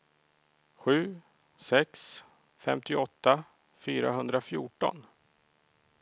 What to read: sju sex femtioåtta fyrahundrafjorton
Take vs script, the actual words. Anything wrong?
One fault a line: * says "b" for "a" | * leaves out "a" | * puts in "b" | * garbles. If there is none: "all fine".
all fine